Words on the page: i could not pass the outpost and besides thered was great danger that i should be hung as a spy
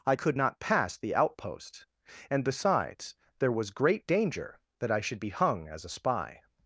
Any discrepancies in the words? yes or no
yes